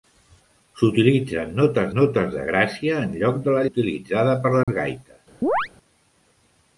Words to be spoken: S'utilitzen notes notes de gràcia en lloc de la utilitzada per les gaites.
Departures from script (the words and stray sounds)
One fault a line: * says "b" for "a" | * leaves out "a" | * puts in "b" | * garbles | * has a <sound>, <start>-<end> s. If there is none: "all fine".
* has a dropout, 4.6-4.7 s
* has a chirp, 5.4-5.7 s